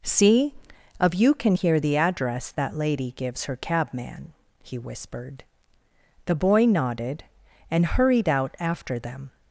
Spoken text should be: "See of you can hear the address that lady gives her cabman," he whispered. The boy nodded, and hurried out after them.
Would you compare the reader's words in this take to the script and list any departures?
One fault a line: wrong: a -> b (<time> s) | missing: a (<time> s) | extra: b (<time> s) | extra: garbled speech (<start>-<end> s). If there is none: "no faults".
no faults